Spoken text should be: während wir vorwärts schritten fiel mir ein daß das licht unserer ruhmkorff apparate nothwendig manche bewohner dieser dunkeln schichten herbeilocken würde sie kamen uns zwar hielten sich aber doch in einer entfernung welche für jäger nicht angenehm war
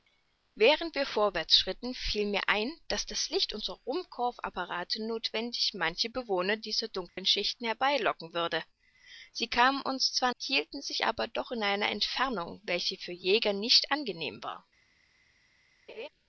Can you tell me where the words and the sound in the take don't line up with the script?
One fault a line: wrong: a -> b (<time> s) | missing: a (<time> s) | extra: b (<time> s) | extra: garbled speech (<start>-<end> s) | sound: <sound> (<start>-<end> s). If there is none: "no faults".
sound: dropout (7.1-7.2 s)
sound: laugh (15.9-16.1 s)